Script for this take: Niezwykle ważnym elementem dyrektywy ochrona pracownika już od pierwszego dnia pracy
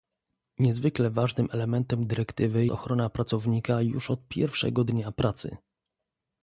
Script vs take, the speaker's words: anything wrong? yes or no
no